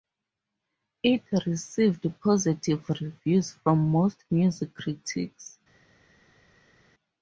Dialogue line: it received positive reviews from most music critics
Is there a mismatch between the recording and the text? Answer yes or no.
no